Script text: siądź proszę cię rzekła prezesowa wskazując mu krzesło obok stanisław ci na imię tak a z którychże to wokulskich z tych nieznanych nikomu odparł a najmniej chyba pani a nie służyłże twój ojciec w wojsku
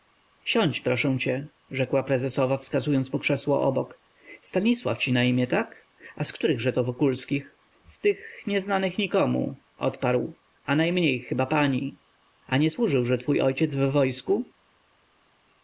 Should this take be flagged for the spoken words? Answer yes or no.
no